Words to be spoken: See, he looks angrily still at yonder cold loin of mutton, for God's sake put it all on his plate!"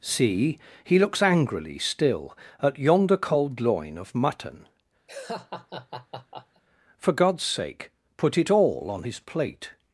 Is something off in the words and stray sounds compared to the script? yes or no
yes